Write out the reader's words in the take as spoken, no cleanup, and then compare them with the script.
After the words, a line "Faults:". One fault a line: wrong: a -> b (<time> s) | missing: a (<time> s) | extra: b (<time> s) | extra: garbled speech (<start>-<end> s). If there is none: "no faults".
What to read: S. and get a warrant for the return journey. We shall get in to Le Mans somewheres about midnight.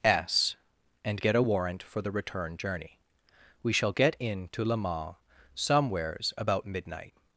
S. and get a warrant for the return journey. We shall get in to Le Mans somewheres about midnight.
Faults:
no faults